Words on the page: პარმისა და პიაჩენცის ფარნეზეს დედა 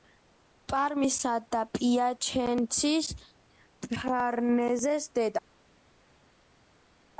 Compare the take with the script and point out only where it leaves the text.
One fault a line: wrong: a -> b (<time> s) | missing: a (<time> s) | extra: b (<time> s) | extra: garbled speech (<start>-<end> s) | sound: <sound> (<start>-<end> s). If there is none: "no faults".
no faults